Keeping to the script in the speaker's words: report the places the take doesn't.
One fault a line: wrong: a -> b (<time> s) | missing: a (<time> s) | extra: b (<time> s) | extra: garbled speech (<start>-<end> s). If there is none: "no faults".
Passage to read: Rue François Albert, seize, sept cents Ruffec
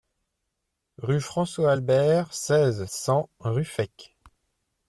missing: sept (2.9 s)